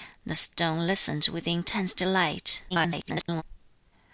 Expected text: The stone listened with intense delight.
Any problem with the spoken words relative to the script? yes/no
yes